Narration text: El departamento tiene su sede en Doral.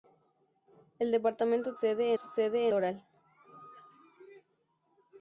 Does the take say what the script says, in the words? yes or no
no